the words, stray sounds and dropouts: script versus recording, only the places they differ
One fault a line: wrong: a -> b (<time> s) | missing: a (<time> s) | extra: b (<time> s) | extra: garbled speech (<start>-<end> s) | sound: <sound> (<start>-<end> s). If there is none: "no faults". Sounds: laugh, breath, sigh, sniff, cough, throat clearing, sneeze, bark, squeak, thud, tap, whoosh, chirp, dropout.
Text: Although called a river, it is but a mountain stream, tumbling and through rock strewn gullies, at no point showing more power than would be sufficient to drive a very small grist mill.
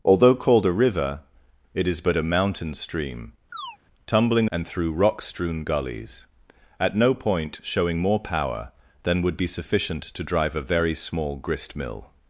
sound: chirp (3.5-3.8 s)